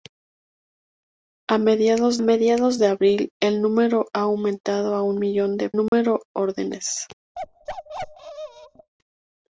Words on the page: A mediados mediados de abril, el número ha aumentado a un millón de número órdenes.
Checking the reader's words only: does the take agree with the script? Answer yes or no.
yes